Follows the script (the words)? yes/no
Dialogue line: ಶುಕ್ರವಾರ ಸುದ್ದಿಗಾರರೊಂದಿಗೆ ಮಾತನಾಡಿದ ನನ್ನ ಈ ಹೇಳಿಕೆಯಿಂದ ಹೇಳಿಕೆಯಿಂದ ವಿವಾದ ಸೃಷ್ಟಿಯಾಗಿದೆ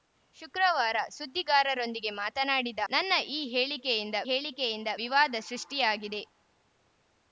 yes